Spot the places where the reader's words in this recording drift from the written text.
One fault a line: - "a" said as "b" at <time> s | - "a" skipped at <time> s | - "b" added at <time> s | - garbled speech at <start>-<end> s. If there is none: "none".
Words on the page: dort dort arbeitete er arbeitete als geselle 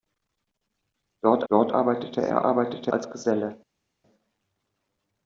none